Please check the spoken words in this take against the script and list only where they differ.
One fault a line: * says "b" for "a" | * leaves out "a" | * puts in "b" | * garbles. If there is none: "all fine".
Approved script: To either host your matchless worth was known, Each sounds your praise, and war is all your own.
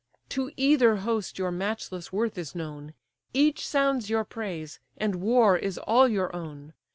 * says "is" for "was"